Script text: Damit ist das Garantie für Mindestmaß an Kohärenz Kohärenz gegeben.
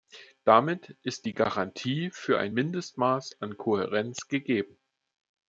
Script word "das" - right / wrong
wrong